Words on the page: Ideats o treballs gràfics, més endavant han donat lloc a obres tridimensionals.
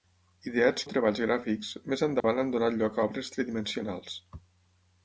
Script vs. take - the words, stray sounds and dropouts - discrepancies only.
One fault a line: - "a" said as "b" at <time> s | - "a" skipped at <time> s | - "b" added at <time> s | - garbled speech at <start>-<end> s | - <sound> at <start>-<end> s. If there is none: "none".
- dropout at 2.2-2.2 s